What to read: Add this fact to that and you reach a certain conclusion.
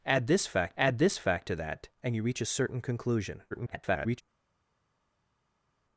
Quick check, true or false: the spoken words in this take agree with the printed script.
false